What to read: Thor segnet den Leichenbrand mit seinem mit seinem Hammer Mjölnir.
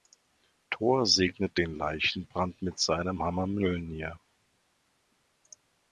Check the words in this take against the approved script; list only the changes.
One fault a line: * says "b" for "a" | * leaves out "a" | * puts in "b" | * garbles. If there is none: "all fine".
* leaves out "mit seinem"